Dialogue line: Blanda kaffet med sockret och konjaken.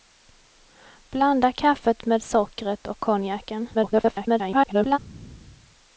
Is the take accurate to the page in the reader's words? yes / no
no